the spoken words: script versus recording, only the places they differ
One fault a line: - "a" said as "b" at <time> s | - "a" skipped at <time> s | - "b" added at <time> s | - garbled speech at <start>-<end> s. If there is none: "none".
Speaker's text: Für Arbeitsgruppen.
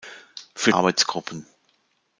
none